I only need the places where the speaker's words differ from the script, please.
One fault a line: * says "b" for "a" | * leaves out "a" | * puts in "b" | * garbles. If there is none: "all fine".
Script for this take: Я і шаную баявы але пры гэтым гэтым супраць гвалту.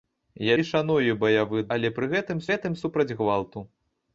all fine